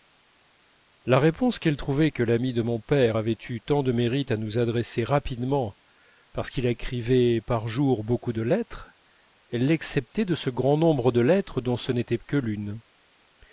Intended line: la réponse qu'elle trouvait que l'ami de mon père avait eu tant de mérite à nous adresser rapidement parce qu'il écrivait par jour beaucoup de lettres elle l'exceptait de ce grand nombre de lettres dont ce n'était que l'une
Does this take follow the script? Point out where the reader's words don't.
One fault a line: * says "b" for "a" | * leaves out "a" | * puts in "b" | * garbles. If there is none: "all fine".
all fine